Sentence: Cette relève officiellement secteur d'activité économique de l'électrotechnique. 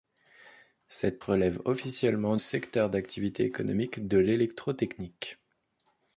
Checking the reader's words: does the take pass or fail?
pass